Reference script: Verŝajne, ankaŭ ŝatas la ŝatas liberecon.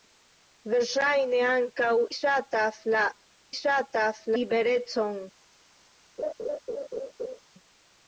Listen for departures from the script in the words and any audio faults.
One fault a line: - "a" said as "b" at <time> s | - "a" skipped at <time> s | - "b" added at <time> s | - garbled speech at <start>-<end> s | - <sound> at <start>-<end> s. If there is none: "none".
- laugh at 6.2-7.4 s